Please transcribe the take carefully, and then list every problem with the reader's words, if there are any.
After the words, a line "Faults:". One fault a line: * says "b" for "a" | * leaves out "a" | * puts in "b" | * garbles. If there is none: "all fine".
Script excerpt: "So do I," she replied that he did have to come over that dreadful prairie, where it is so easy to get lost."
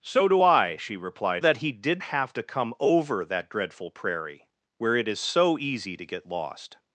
"So do I," she replied that he did have to come over that dreadful prairie, where it is so easy to get lost."
Faults:
all fine